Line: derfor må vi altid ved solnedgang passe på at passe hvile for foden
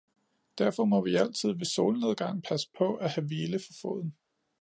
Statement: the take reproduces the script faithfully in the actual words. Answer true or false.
false